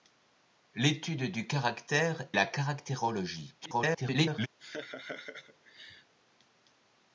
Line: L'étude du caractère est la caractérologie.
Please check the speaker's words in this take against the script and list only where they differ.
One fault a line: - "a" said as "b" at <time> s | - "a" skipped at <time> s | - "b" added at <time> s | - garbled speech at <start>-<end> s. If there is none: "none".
- "est" skipped at 2.3 s
- garbled speech at 3.6-4.5 s